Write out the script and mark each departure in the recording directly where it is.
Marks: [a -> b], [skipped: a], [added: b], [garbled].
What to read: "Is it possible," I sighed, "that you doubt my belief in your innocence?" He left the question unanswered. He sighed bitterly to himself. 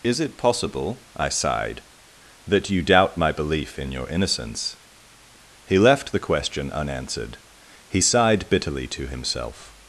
"Is it possible," I sighed, "that you doubt my belief in your innocence?" He left the question unanswered. He sighed bitterly to himself.